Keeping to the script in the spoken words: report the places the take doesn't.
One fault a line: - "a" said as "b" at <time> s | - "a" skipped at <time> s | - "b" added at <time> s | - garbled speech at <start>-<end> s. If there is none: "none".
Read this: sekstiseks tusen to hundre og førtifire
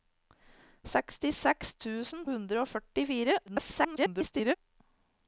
- "to" skipped at 2.2 s
- garbled speech at 3.5-4.6 s